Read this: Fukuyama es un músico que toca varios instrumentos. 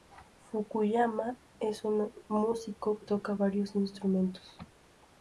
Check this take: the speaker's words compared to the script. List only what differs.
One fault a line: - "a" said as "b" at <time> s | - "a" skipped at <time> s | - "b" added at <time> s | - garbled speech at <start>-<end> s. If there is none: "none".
- "que" skipped at 3.0 s